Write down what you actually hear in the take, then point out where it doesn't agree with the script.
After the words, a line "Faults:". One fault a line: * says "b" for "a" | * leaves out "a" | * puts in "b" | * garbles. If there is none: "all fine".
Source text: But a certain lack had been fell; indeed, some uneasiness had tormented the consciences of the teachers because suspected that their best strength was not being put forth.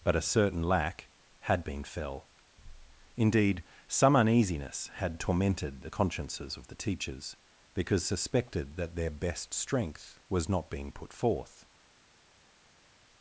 But a certain lack had been fell; indeed, some uneasiness had tormented the consciences of the teachers because suspected that their best strength was not being put forth.
Faults:
all fine